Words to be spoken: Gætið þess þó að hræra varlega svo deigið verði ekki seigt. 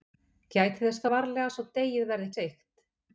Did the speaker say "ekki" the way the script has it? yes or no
no